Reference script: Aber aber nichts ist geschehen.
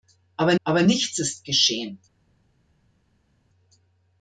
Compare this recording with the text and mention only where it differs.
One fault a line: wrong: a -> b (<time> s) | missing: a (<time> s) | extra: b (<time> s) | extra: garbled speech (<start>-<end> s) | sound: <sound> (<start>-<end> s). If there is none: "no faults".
no faults